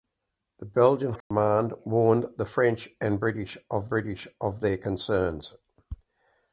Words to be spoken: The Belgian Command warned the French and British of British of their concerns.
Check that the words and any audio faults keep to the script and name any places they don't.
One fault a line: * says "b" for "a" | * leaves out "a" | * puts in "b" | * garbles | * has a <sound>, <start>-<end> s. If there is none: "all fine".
* has a dropout, 1.2-1.3 s